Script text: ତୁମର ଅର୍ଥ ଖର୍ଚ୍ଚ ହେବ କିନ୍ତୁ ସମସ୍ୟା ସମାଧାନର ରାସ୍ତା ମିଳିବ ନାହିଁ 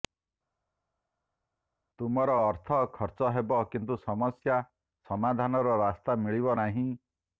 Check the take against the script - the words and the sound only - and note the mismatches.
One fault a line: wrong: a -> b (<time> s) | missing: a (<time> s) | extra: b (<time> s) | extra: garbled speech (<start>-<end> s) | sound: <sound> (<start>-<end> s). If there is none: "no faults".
no faults